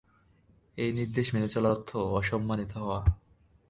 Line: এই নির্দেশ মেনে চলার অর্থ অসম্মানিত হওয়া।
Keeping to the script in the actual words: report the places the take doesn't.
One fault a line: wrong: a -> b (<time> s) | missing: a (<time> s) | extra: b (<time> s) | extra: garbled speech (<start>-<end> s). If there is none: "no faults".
no faults